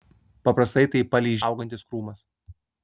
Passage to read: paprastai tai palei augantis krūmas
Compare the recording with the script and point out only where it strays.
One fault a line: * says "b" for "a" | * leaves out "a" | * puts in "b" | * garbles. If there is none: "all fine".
all fine